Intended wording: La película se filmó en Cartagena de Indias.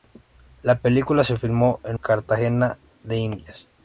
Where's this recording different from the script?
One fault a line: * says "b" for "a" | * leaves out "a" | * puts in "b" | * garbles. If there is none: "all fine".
all fine